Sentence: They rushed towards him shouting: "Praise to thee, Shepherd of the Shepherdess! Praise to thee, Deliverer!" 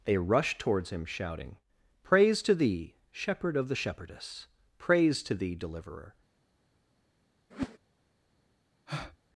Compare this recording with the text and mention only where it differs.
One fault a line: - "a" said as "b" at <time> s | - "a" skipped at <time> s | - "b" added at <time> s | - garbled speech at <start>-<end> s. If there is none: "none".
none